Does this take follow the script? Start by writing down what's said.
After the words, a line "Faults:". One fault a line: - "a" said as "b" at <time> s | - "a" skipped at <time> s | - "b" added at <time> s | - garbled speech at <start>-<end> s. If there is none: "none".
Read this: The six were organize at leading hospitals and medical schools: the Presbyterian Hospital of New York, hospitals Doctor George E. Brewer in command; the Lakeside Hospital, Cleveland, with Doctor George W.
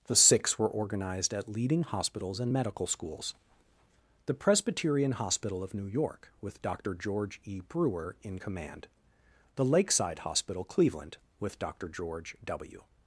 The six were organized at leading hospitals and medical schools: the Presbyterian Hospital of New York, with Doctor George E. Brewer in command; the Lakeside Hospital, Cleveland, with Doctor George W.
Faults:
- "organize" said as "organized" at 0.7 s
- "hospitals" said as "with" at 6.4 s